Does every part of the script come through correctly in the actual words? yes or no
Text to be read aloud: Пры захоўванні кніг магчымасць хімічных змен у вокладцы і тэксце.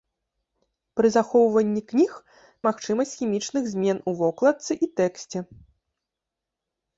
yes